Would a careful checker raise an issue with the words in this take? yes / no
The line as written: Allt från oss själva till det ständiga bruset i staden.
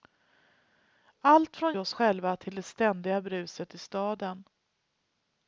no